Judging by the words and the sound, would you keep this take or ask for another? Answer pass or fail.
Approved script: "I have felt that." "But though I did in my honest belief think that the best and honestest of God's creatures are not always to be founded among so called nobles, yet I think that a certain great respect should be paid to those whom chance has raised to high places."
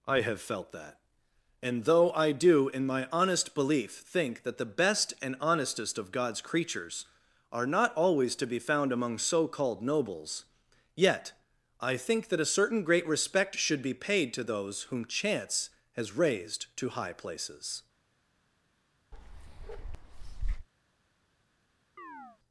fail